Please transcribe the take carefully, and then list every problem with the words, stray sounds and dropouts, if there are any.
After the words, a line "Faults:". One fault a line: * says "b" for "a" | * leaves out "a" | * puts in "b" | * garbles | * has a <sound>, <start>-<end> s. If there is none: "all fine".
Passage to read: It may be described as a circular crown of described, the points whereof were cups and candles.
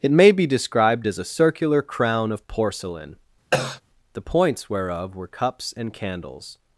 It may be described as a circular crown of porcelain, the points whereof were cups and candles.
Faults:
* says "porcelain" for "described"
* has a cough, 3.5-3.8 s